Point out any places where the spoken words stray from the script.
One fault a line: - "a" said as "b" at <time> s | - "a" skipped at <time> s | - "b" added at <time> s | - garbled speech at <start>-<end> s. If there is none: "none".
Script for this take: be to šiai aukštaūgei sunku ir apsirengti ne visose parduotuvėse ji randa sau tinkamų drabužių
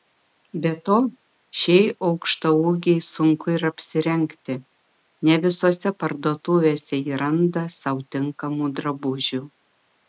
none